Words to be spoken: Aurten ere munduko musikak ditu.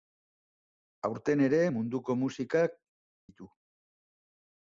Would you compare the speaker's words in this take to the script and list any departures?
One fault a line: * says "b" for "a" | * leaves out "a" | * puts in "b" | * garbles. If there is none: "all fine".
all fine